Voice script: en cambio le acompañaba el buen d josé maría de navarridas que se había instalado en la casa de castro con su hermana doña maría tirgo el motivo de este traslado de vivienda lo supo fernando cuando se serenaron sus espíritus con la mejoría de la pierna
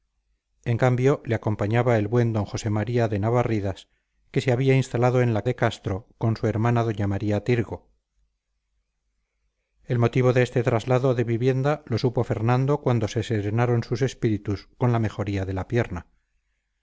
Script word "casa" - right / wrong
wrong